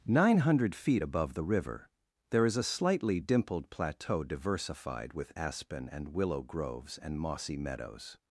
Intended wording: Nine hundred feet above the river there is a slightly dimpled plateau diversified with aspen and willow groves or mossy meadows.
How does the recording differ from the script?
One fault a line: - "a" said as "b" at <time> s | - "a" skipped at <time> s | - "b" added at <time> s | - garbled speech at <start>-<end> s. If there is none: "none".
- "or" said as "and" at 7.0 s